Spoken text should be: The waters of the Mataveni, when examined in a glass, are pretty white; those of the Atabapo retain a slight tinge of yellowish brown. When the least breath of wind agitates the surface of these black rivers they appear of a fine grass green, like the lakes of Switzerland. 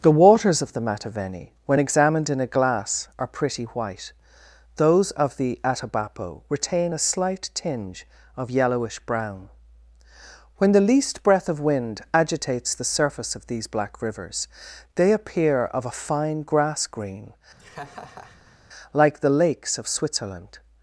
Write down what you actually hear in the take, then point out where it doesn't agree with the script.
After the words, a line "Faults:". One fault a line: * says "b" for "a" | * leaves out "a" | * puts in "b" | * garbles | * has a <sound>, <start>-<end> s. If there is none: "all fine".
The waters of the Mataveni, when examined in a glass, are pretty white; those of the Atabapo retain a slight tinge of yellowish brown. When the least breath of wind agitates the surface of these black rivers they appear of a fine grass green, like the lakes of Switzerland.
Faults:
* has a laugh, 17.6-18.6 s